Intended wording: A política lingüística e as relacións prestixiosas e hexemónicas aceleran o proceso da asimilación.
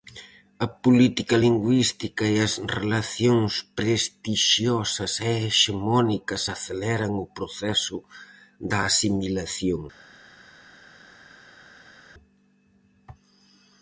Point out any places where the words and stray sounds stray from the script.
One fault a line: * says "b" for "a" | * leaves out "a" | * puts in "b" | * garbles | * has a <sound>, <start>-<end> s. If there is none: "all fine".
all fine